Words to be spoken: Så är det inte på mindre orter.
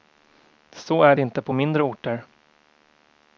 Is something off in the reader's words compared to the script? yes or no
yes